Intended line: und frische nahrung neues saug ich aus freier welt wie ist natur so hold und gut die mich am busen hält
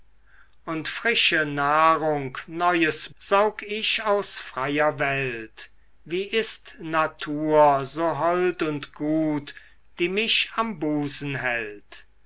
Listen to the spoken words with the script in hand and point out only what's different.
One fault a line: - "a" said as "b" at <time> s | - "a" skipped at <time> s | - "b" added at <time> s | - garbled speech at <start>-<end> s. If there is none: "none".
none